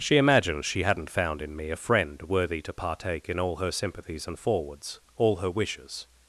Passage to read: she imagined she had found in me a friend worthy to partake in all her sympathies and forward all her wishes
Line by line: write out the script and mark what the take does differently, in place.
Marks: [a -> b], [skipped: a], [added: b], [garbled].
she imagined she [had -> hadn't] found in me a friend worthy to partake in all her sympathies and [forward -> forwards] all her wishes